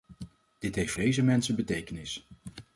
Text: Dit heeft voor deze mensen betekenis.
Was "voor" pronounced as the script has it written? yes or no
no